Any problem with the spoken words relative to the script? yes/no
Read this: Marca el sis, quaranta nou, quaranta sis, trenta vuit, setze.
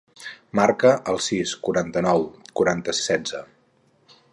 yes